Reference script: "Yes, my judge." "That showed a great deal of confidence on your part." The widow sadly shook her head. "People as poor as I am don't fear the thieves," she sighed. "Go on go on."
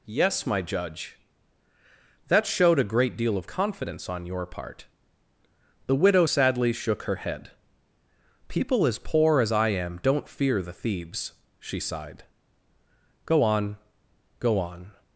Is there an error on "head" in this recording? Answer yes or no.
no